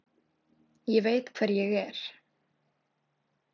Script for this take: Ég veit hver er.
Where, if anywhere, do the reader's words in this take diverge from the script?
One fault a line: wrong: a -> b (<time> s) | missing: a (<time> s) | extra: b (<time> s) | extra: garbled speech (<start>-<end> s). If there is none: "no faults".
extra: ég (1.6 s)